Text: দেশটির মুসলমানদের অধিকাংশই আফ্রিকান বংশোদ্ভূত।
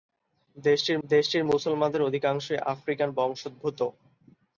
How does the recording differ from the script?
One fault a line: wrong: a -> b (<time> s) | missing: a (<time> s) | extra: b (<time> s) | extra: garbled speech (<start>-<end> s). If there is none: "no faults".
extra: দেশটির (1.0 s)